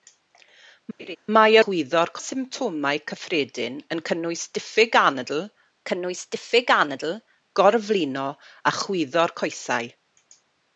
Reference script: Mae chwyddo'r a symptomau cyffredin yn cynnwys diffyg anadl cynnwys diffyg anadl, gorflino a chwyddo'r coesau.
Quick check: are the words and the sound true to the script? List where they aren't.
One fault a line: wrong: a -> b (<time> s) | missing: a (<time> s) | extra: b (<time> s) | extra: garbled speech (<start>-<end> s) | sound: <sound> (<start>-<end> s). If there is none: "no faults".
sound: laugh (1.0-1.2 s)